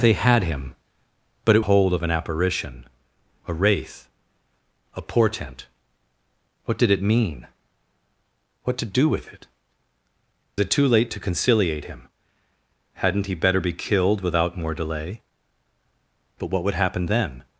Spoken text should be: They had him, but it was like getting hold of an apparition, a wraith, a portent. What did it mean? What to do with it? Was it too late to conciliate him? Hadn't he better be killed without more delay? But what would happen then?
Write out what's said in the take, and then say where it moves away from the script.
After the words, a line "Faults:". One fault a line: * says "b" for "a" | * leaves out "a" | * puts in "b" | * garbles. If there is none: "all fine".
They had him, but it hold of an apparition, a wraith, a portent. What did it mean? What to do with it? It too late to conciliate him? Hadn't he better be killed without more delay? But what would happen then?
Faults:
* leaves out "was like getting"
* leaves out "Was"